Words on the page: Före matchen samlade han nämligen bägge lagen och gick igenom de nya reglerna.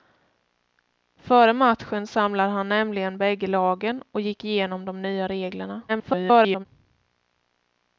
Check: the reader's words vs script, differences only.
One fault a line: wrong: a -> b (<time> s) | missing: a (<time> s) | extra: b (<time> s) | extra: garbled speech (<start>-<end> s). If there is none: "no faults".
extra: garbled speech (5.9-6.7 s)